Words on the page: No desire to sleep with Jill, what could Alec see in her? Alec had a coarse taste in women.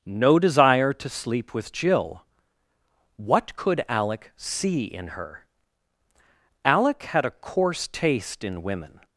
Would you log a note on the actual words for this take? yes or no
no